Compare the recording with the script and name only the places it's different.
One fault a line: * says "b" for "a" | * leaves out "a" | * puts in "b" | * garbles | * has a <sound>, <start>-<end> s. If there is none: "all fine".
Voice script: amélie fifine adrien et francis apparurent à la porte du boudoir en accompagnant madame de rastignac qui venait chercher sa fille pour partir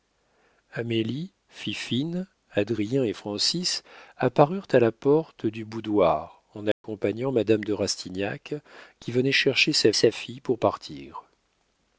* has a dropout, 6.7-6.8 s
* puts in "sa"